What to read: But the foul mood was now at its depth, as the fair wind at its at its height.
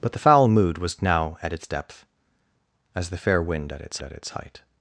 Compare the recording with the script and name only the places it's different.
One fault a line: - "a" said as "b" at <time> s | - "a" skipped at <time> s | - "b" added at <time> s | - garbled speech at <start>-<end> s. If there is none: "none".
none